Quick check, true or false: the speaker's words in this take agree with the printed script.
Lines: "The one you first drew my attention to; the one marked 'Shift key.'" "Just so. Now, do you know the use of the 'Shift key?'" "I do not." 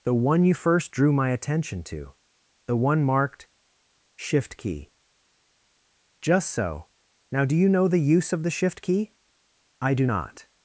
true